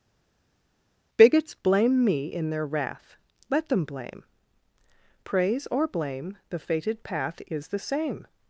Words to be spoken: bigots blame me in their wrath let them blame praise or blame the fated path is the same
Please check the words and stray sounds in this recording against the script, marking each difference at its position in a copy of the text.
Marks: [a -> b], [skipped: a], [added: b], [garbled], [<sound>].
bigots blame me in their wrath let them blame praise or blame the fated path is the same